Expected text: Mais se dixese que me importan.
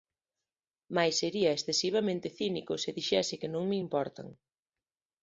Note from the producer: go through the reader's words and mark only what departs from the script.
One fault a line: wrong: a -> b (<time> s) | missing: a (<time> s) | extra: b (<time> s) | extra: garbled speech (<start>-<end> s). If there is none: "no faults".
extra: sería excesivamente cínico (1.2 s)
extra: non (3.5 s)